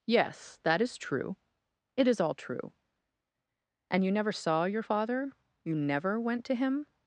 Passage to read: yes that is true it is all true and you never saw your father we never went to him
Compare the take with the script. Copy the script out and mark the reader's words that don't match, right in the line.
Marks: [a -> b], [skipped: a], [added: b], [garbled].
yes that is true it is all true and you never saw your father [we -> you] never went to him